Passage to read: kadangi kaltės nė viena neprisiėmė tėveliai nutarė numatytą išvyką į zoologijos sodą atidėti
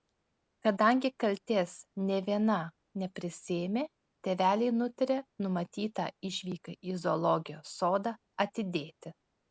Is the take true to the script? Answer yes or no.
yes